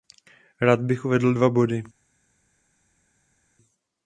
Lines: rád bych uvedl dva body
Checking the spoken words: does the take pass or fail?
pass